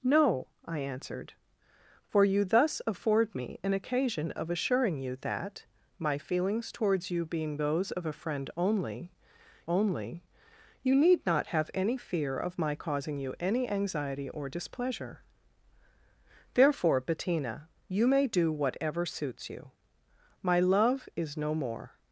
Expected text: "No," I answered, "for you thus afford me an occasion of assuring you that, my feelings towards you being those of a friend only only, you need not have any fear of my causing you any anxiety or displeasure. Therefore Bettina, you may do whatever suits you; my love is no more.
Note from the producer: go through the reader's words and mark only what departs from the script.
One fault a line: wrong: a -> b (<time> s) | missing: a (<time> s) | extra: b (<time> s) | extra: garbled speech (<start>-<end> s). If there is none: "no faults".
no faults